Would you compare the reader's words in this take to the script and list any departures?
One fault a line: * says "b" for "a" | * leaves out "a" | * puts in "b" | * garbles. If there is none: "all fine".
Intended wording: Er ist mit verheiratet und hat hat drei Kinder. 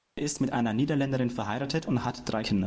* puts in "einer Niederländerin"
* leaves out "hat"